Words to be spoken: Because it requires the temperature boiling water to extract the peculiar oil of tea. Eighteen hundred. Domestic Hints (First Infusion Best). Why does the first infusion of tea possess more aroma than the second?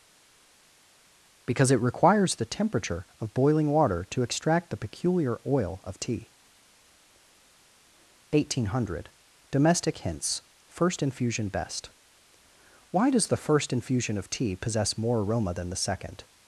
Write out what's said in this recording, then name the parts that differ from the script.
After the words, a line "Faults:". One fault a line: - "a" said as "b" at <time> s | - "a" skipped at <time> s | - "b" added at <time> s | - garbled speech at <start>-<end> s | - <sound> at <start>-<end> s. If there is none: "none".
Because it requires the temperature of boiling water to extract the peculiar oil of tea. Eighteen hundred. Domestic Hints (First Infusion Best). Why does the first infusion of tea possess more aroma than the second?
Faults:
- "of" added at 3.2 s